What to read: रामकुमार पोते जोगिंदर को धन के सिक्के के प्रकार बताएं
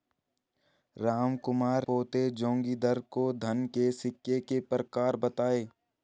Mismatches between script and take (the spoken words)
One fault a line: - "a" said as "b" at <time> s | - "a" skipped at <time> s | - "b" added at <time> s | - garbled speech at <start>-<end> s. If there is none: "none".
none